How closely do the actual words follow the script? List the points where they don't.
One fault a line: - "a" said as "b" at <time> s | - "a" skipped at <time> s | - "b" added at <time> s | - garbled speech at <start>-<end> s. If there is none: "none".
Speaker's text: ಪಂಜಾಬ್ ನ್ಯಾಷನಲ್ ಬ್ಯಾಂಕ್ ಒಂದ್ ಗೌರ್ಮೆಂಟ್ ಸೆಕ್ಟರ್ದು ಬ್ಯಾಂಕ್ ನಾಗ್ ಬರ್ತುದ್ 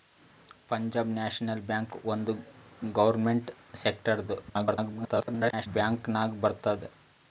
- garbled speech at 4.5-5.7 s